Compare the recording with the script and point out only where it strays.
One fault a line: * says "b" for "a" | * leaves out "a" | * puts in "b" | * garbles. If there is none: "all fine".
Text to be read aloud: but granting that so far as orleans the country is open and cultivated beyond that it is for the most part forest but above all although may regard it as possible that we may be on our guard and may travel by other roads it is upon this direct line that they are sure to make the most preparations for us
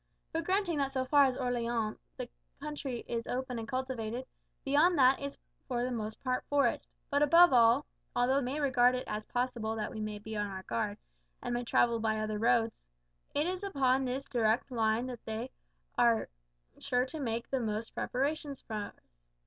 all fine